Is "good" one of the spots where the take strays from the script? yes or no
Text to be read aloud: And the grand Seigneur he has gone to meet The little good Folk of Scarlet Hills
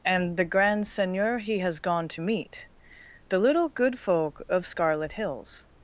no